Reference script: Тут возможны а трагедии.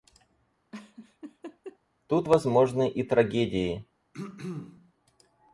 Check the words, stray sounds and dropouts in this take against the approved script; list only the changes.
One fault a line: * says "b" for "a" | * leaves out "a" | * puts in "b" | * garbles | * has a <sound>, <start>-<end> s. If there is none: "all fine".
* has a laugh, 0.7-1.8 s
* says "и" for "а"
* has a throat clearing, 4.1-4.9 s